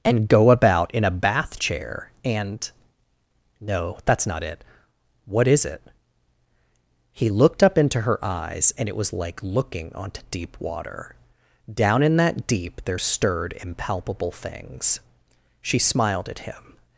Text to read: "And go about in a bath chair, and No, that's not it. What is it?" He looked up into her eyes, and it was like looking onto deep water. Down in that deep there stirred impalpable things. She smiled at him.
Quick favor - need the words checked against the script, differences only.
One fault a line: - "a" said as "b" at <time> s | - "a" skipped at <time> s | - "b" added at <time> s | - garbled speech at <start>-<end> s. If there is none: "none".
none